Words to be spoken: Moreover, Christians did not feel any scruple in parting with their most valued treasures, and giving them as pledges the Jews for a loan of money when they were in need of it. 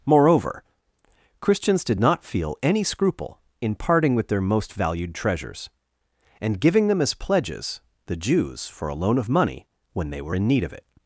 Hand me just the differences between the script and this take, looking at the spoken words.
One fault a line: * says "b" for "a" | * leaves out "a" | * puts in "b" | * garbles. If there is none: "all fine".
all fine